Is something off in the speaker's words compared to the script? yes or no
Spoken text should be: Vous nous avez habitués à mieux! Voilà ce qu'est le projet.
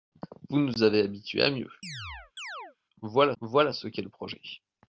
yes